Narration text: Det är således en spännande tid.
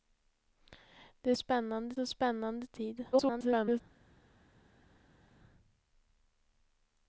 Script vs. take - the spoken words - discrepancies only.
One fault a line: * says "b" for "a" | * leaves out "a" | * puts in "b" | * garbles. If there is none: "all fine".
* says "spännande" for "således"
* garbles